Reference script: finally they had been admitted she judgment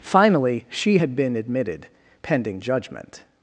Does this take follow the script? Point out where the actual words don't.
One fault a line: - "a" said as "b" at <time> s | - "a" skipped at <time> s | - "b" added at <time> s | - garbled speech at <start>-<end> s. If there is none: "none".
- "they" said as "she" at 0.7 s
- "she" said as "pending" at 2.2 s